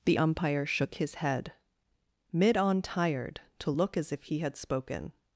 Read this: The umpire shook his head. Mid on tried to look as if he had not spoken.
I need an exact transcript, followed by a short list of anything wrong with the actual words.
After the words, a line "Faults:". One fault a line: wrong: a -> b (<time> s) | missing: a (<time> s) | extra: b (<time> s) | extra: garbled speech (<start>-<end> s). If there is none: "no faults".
The umpire shook his head. Mid on tired to look as if he had spoken.
Faults:
wrong: tried -> tired (2.8 s)
missing: not (4.6 s)